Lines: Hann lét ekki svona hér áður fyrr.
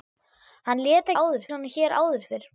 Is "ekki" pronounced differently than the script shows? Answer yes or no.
yes